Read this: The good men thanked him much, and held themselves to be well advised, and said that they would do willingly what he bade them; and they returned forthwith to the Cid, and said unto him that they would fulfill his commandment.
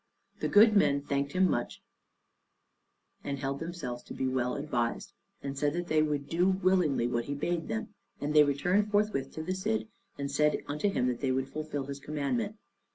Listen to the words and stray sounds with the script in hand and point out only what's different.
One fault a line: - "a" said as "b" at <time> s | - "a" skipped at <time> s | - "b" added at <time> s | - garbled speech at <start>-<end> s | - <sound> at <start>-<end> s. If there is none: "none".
none